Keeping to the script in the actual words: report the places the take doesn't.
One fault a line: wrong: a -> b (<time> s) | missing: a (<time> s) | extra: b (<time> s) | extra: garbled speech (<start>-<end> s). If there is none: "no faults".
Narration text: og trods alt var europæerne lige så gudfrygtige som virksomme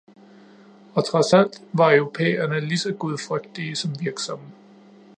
no faults